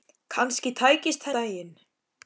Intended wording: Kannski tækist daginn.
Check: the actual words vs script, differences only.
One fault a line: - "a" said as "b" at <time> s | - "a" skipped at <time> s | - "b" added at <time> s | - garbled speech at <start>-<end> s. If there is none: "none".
none